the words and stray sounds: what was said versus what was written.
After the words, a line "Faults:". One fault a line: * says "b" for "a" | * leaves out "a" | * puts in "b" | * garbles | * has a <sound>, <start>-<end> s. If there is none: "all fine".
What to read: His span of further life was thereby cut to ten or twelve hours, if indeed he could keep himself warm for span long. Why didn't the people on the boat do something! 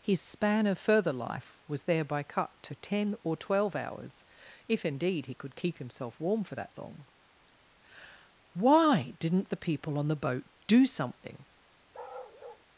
His span of further life was thereby cut to ten or twelve hours, if indeed he could keep himself warm for that long. Why didn't the people on the boat do something!
Faults:
* says "that" for "span"
* has a bark, 11.9-12.7 s